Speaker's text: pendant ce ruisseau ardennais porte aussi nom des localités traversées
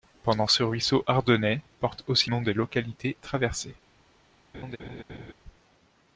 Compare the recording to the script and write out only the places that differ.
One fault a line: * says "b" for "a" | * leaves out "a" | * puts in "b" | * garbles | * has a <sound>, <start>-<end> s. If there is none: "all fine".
* has a laugh, 4.5-5.3 s